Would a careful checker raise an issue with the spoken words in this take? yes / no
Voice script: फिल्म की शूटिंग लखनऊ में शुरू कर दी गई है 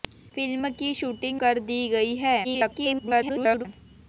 yes